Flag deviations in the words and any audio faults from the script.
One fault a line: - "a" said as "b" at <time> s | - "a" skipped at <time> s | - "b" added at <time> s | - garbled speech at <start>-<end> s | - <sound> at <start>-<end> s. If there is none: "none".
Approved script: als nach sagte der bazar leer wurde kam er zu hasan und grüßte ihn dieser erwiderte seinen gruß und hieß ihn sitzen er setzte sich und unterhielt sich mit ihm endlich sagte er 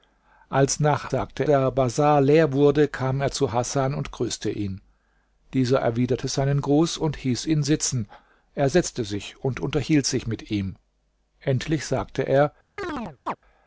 - chirp at 12.8-13.4 s